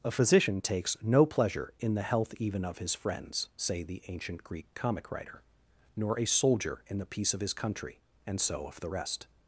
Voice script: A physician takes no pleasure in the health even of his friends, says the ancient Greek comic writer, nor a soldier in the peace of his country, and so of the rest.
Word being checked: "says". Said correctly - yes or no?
no